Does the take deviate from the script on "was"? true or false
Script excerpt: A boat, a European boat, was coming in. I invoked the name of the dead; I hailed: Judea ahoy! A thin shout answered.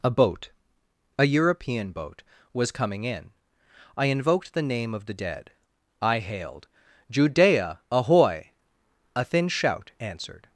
false